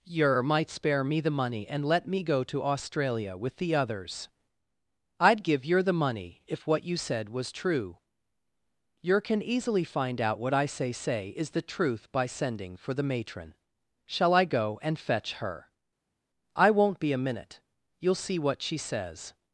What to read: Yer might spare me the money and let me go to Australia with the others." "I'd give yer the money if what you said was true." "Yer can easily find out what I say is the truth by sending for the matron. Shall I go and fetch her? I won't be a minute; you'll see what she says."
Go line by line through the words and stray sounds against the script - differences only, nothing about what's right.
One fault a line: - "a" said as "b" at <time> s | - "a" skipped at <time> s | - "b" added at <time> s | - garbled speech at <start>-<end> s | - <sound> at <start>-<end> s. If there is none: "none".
- "say" added at 10.9 s